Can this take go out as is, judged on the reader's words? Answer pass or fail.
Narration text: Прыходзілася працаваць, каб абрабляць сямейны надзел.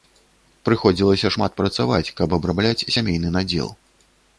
fail